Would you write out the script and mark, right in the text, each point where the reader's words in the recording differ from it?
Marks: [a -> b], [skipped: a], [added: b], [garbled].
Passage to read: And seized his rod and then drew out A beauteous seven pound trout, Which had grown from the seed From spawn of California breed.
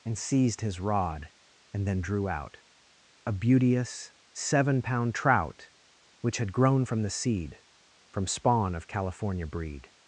And seized his rod and then drew out A beauteous seven pound trout, Which had grown from the seed From spawn of California breed.